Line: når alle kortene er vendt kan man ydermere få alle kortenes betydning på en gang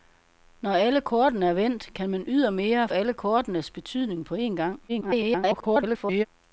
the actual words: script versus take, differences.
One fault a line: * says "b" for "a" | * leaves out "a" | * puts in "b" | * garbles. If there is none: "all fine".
* leaves out "få"
* garbles